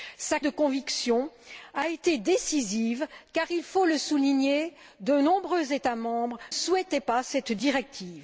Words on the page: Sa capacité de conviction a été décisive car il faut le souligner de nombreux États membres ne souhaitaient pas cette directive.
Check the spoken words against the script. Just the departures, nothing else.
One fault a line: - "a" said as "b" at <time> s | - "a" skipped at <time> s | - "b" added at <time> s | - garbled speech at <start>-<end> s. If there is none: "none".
- "capacité" skipped at 0.4 s
- "ne" skipped at 6.4 s